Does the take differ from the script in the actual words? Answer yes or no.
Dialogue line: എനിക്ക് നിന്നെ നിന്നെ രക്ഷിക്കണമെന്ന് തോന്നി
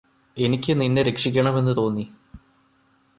yes